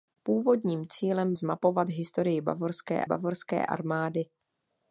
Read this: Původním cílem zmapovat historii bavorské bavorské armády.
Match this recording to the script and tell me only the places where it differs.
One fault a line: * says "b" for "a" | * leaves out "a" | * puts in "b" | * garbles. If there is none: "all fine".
all fine